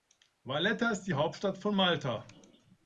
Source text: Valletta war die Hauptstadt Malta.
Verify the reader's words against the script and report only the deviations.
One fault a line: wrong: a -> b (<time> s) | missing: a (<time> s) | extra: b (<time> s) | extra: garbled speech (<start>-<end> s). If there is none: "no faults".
wrong: war -> ist (0.9 s)
extra: von (1.6 s)